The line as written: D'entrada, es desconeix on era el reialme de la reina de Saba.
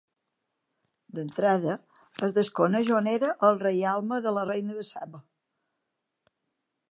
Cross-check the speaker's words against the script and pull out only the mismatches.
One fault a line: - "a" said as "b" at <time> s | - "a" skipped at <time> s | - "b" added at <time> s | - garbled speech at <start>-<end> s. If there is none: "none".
none